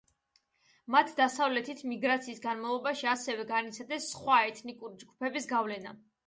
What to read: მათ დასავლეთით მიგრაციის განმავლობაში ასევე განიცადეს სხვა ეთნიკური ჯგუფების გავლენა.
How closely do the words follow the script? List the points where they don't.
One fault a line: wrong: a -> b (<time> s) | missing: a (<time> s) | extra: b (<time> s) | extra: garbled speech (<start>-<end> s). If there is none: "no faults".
no faults